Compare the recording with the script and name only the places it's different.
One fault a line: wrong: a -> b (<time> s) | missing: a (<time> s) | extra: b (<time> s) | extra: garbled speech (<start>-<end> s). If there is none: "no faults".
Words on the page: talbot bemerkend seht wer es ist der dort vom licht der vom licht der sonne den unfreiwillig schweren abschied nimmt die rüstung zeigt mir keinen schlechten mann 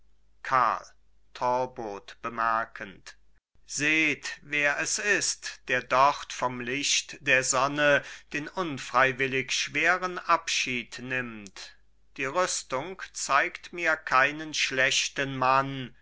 missing: vom licht der (7.4 s)